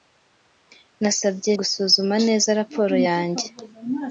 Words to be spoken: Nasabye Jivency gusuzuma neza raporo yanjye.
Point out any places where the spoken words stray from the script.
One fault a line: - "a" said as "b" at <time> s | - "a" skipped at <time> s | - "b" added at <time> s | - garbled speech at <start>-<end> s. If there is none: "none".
- "Jivency" skipped at 1.5 s